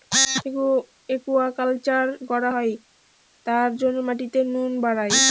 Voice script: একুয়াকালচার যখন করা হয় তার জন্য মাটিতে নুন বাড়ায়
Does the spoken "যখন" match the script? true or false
false